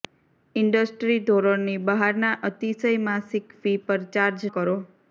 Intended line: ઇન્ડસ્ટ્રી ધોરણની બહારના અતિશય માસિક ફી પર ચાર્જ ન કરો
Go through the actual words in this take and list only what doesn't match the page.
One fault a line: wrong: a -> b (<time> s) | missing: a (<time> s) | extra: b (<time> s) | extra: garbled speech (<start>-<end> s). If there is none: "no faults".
missing: ન (4.5 s)